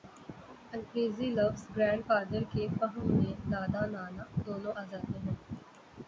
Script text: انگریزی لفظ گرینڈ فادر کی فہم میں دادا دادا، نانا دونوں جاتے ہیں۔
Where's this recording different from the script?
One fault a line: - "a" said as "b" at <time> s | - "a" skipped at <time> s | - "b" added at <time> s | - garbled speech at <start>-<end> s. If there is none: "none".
- "کی" said as "کے" at 2.5 s
- "دادا" skipped at 3.8 s
- "آ" added at 4.7 s